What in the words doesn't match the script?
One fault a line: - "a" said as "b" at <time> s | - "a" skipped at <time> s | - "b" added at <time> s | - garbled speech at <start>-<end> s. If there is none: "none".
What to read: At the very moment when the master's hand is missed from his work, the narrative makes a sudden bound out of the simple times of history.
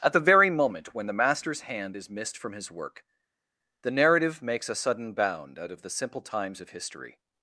none